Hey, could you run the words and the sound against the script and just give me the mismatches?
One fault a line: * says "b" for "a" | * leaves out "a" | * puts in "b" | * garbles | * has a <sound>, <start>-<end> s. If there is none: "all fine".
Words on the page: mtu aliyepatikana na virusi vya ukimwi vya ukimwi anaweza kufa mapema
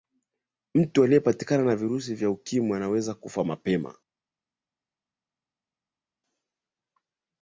* leaves out "vya ukimwi"